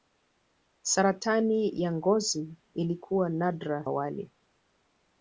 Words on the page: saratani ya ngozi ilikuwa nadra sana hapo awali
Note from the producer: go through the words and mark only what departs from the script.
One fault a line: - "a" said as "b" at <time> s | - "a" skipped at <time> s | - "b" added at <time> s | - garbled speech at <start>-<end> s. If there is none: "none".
- "sana hapo" skipped at 3.8 s